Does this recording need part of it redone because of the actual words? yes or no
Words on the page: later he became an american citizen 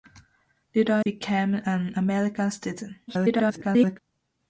yes